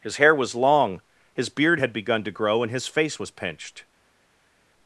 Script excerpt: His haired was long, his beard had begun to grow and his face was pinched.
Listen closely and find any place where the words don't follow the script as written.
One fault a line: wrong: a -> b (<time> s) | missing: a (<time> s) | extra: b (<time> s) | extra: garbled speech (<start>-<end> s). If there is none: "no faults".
wrong: haired -> hair (0.1 s)